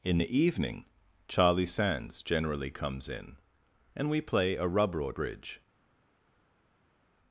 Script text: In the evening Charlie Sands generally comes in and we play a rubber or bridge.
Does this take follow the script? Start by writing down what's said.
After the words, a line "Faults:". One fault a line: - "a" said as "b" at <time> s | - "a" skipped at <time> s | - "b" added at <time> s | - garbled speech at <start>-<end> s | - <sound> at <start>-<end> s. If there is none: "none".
In the evening Charlie Sands generally comes in and we play a rubber or bridge.
Faults:
none